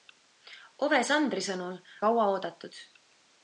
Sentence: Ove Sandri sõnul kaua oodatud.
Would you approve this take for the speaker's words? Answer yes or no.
yes